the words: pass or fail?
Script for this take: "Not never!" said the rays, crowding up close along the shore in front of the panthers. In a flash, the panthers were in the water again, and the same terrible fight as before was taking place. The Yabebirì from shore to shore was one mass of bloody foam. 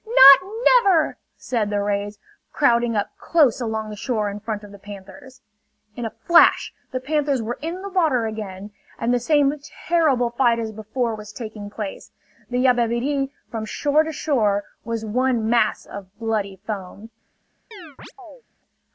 pass